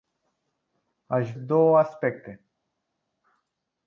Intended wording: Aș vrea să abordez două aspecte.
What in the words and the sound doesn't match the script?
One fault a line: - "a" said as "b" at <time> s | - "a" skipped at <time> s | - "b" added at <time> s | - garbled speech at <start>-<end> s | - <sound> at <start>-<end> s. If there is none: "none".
- "vrea să abordez" skipped at 1.3 s